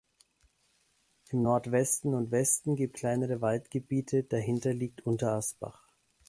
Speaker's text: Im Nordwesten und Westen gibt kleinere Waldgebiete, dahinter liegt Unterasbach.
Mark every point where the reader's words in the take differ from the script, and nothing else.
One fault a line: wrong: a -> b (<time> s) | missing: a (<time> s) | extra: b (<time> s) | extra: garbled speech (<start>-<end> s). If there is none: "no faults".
no faults